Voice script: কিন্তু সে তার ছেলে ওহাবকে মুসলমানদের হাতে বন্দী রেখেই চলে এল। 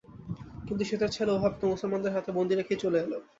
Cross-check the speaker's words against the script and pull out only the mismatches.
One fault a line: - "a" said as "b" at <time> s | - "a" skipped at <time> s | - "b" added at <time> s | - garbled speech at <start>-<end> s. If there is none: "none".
none